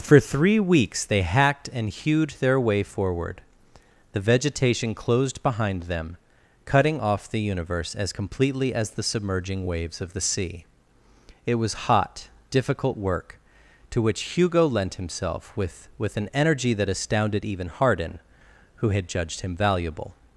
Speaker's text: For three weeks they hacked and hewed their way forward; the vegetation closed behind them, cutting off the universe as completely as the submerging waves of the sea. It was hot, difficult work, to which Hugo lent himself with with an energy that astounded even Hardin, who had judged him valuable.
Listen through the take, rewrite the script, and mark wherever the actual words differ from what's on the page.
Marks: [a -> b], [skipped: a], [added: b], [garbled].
For three weeks they hacked and hewed their way forward; the vegetation closed behind them, cutting off the universe as completely as the submerging waves of the sea. It was hot, difficult work, to which Hugo lent himself with with an energy that astounded even Hardin, who had judged him valuable.